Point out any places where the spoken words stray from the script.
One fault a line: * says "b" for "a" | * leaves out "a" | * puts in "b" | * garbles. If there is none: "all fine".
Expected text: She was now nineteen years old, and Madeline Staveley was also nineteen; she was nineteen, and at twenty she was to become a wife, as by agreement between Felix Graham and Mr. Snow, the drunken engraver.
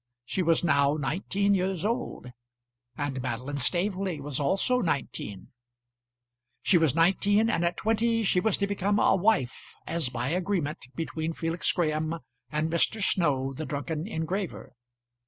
all fine